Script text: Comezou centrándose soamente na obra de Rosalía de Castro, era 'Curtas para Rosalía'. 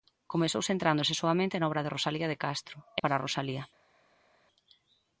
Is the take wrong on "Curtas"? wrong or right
wrong